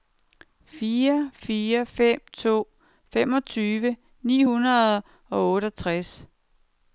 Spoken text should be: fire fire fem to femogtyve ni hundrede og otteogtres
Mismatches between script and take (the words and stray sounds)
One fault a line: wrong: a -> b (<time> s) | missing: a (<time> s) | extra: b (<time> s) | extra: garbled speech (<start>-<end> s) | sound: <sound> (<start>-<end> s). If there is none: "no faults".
no faults